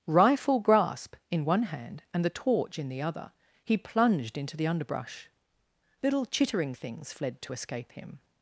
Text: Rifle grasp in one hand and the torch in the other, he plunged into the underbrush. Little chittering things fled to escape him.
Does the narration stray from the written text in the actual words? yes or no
no